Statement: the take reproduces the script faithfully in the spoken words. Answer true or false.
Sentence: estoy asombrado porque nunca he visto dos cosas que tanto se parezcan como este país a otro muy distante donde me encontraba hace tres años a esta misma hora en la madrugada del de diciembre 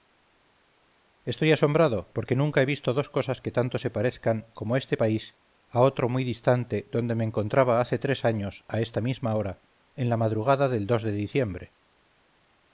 true